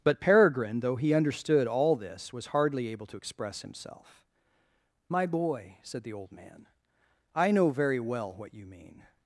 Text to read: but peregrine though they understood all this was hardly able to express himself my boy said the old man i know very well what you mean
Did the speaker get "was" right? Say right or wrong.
right